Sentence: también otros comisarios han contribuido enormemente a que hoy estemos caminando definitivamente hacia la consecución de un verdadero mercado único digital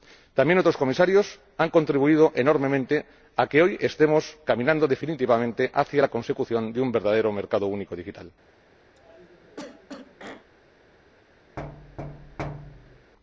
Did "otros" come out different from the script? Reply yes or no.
no